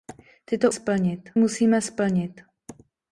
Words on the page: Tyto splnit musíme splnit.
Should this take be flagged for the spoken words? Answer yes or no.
no